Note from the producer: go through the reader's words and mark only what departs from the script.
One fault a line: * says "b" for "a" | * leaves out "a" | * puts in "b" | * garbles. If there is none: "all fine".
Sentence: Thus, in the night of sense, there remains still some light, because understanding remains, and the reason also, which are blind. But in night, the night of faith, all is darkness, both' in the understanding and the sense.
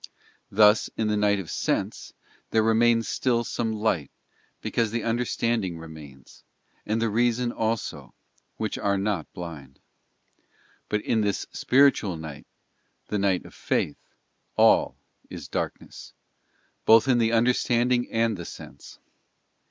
* puts in "the"
* puts in "not"
* puts in "this spiritual"